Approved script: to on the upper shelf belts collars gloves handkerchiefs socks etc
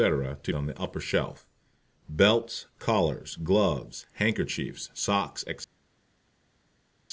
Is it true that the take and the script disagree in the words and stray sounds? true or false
false